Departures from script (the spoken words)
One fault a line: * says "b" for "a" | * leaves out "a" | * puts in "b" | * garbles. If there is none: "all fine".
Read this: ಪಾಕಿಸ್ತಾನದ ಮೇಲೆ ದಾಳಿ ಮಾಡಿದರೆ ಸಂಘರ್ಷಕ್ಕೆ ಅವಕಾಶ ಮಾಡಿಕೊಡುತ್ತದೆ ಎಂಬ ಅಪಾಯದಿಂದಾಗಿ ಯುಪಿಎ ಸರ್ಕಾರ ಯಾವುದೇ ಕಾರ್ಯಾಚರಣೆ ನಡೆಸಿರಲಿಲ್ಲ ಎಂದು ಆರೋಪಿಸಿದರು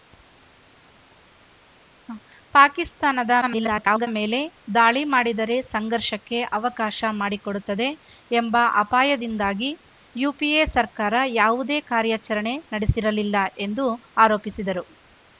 * garbles